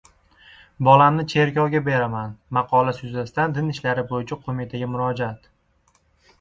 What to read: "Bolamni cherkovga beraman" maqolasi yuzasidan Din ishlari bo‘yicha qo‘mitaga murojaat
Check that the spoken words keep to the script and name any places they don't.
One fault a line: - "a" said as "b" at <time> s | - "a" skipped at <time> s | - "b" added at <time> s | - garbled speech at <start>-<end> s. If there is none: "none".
none